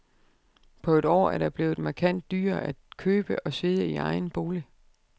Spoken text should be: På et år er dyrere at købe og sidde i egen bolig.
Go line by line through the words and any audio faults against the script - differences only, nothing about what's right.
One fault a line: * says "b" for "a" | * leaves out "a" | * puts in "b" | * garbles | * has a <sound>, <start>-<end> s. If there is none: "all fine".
* puts in "det blevet markant"